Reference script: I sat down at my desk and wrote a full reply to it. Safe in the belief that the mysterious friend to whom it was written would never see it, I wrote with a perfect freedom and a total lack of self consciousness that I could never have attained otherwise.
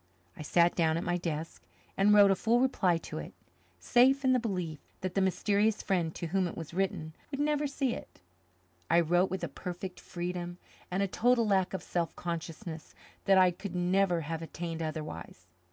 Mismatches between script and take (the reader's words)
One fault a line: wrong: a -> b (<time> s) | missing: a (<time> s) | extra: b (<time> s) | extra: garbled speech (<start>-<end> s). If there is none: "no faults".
no faults